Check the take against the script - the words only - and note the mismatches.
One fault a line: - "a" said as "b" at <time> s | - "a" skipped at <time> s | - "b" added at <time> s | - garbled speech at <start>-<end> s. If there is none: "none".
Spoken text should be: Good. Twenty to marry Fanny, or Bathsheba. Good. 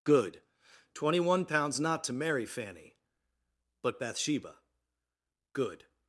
- "one pounds not" added at 1.2 s
- "or" said as "but" at 3.8 s